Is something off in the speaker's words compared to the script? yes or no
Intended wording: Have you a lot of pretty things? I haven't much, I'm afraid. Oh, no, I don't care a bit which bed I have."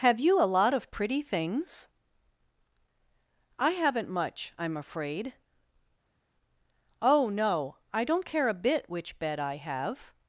no